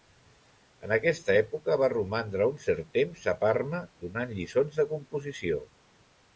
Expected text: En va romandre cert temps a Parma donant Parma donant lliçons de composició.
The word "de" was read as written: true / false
true